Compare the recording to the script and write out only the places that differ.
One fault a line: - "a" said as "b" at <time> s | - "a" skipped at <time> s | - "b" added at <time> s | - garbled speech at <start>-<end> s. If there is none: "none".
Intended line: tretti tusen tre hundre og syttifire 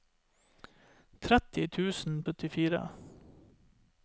- "tre hundre og" skipped at 2.1 s